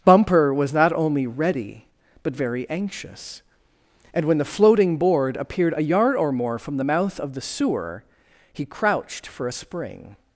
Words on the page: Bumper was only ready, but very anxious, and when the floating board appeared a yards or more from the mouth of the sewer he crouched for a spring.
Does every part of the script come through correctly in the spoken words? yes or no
no